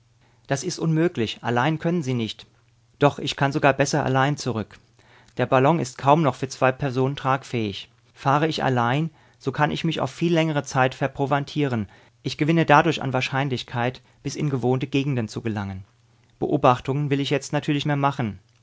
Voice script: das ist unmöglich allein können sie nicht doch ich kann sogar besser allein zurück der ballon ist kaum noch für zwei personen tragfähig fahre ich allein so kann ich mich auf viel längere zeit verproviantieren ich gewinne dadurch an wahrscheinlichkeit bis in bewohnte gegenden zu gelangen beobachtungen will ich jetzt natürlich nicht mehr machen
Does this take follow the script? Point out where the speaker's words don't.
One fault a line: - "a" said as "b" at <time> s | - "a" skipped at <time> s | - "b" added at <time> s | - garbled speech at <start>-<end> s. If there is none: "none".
- "nicht" skipped at 17.8 s